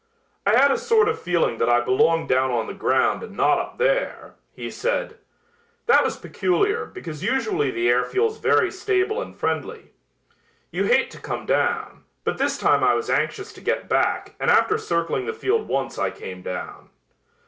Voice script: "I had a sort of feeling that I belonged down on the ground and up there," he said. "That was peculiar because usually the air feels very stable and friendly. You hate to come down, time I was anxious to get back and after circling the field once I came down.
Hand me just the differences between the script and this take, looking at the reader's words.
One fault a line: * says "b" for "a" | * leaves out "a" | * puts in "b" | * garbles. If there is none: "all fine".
* puts in "not"
* puts in "but this"